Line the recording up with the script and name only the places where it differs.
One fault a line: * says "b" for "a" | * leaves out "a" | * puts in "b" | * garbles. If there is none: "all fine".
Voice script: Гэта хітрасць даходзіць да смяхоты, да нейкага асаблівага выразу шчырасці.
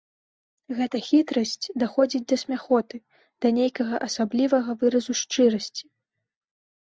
all fine